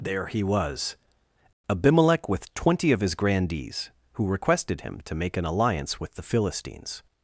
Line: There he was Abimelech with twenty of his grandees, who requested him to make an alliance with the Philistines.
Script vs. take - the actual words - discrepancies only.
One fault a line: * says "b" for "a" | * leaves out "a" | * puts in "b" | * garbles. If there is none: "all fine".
all fine